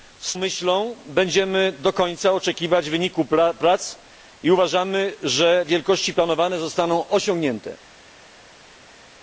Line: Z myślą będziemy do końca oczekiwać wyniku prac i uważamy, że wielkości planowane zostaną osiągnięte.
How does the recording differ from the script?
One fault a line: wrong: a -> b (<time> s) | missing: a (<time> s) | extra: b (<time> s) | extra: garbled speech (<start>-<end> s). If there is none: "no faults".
no faults